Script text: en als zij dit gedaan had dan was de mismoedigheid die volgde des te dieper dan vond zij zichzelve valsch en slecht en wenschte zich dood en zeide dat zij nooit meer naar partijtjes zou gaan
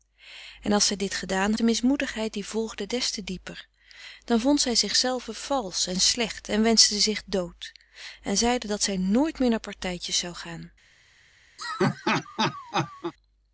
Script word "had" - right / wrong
wrong